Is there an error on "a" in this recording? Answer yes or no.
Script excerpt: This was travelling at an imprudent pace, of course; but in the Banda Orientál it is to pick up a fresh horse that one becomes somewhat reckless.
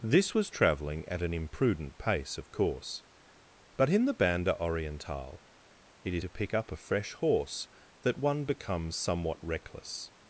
no